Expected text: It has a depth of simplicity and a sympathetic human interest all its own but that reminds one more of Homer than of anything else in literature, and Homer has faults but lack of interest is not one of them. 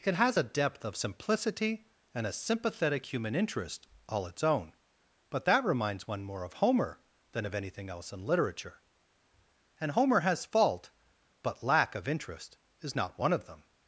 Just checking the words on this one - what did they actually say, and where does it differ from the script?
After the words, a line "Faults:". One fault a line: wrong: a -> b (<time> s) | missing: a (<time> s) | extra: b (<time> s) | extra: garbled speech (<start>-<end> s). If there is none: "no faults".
It has a depth of simplicity and a sympathetic human interest all its own but that reminds one more of Homer than of anything else in literature, and Homer has fault but lack of interest is not one of them.
Faults:
wrong: faults -> fault (10.4 s)